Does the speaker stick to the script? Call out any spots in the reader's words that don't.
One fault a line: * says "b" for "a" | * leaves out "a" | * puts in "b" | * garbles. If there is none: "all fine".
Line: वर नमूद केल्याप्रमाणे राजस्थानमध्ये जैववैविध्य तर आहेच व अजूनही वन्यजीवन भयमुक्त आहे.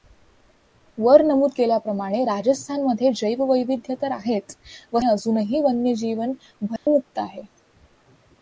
all fine